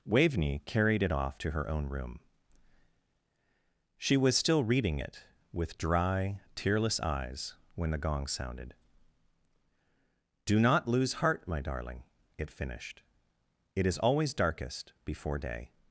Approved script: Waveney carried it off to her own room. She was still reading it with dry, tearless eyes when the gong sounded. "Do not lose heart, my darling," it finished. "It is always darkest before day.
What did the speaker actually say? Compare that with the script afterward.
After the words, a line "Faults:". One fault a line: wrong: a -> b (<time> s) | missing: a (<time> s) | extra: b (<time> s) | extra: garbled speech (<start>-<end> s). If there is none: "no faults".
Waveney carried it off to her own room. She was still reading it with dry, tearless eyes when the gong sounded. "Do not lose heart, my darling," it finished. "It is always darkest before day.
Faults:
no faults